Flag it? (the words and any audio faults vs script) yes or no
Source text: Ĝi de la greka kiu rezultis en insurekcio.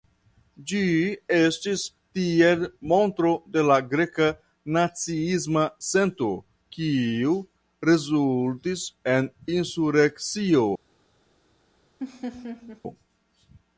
yes